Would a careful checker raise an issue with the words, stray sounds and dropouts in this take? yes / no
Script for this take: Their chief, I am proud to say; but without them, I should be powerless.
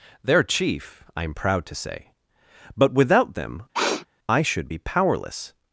yes